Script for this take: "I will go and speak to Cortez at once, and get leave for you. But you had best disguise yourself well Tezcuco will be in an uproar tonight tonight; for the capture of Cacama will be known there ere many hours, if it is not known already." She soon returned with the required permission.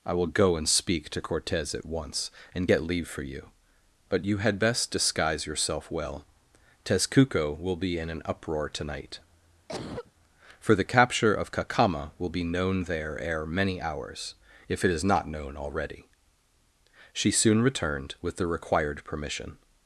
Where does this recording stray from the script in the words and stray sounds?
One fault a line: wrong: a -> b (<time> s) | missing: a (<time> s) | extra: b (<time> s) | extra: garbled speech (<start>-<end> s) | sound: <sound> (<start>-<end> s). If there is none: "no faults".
missing: tonight (9.2 s)
sound: cough (9.7-10.1 s)